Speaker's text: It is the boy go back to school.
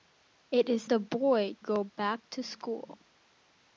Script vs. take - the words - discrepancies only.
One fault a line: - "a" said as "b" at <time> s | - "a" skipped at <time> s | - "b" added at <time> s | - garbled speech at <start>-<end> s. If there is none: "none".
none